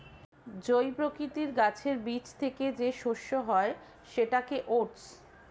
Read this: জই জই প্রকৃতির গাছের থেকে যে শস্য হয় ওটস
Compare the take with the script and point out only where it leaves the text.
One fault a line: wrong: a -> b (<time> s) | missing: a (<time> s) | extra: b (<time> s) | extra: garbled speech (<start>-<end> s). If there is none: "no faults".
missing: জই (0.9 s)
extra: বীজ (2.0 s)
extra: সেটাকে (4.1 s)